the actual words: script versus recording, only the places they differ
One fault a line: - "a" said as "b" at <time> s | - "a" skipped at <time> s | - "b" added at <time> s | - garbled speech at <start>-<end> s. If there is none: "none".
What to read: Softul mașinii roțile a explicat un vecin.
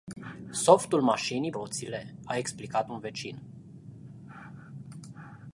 none